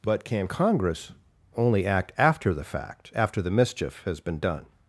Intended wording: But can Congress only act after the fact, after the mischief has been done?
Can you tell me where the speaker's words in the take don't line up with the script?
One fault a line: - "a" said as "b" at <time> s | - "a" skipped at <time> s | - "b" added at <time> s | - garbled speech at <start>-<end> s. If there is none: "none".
none